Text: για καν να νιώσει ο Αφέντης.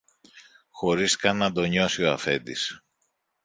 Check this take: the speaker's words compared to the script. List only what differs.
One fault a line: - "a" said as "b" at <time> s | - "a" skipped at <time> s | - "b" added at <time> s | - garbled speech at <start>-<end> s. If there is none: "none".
- "για" said as "χωρίς" at 0.7 s
- "το" added at 1.5 s